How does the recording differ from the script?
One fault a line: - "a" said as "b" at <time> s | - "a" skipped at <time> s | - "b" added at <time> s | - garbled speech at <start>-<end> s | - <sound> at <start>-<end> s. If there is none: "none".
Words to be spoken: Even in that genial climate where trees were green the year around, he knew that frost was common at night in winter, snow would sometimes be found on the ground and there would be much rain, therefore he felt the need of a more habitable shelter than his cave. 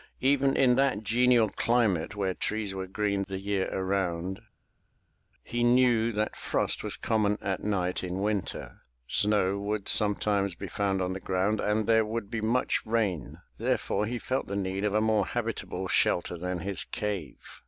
none